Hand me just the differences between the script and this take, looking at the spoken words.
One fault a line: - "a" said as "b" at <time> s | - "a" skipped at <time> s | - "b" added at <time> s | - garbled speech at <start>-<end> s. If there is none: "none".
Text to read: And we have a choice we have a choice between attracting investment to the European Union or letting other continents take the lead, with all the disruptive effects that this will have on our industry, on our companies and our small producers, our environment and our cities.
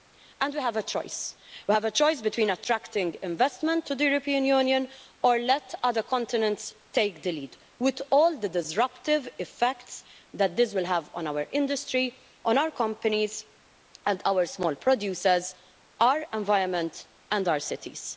none